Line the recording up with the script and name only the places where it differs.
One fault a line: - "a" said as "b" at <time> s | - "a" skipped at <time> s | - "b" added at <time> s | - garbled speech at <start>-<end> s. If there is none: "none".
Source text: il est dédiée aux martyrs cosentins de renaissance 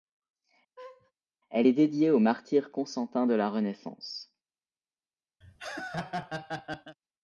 - "il" said as "elle" at 1.5 s
- "la" added at 3.3 s